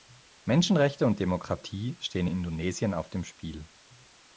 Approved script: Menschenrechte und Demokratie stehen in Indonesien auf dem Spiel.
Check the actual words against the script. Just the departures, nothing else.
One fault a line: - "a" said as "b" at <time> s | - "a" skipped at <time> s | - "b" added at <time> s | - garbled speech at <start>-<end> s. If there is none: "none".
- "in" skipped at 2.2 s